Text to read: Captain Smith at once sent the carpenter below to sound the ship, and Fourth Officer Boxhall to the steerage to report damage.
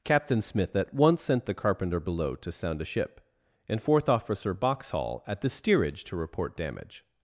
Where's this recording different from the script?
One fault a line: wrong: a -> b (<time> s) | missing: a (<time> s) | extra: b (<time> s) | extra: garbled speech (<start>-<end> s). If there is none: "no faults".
wrong: the -> a (2.8 s)
wrong: to -> at (5.2 s)